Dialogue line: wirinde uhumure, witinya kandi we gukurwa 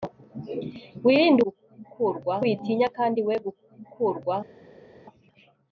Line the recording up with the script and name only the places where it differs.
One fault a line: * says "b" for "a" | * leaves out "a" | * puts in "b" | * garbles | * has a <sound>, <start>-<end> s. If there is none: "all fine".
* says "gukurwa" for "uhumure"